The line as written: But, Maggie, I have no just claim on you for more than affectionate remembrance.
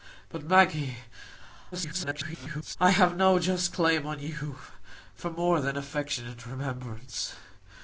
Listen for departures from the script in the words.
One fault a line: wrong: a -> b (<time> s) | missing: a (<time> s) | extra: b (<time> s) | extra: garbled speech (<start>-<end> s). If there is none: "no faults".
extra: garbled speech (1.7-2.8 s)